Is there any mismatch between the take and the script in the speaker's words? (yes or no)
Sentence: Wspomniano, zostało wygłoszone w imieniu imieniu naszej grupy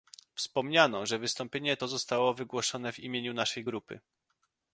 yes